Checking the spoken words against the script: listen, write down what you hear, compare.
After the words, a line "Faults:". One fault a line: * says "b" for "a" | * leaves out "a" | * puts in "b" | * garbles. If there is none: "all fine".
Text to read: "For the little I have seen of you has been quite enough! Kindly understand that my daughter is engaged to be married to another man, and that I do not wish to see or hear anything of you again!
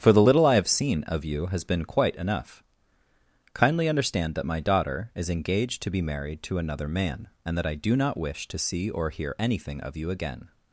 "For the little I have seen of you has been quite enough! Kindly understand that my daughter is engaged to be married to another man, and that I do not wish to see or hear anything of you again!
Faults:
all fine